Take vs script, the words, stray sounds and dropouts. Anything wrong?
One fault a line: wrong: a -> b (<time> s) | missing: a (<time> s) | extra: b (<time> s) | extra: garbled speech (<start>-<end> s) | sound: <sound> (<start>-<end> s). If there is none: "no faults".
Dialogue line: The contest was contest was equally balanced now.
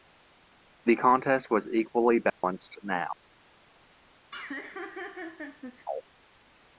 missing: contest was (1.7 s)
sound: dropout (2.3-2.4 s)
sound: laugh (4.3-5.9 s)